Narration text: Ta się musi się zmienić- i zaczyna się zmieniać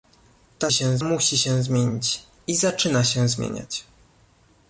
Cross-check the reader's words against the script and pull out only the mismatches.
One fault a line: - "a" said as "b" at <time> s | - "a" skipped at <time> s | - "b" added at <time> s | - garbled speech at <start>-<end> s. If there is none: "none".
none